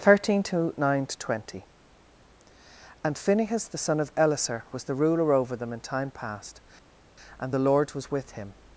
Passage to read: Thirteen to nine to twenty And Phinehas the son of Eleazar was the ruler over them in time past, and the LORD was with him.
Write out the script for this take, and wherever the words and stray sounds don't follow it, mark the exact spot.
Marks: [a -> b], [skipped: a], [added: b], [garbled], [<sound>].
Thirteen to nine to twenty And Phinehas the son of Eleazar was the ruler over them in time past, and the LORD was with him.